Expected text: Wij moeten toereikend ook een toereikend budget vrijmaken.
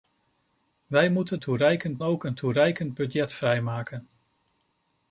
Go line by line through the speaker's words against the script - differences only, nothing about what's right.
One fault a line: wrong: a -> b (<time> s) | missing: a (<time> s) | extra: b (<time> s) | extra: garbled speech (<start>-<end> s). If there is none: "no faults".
no faults